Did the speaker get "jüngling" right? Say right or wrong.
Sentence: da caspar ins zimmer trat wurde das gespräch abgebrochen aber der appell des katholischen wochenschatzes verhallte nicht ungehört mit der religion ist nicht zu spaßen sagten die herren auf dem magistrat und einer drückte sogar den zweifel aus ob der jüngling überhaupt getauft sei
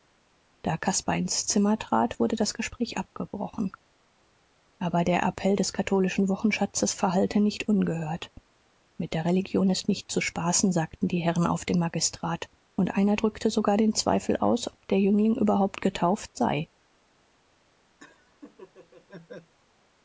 right